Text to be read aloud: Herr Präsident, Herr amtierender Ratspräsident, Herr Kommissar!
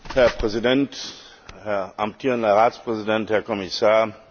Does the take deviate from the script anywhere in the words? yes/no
no